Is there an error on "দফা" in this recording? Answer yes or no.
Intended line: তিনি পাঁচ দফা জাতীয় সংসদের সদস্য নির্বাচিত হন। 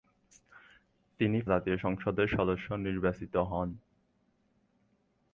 yes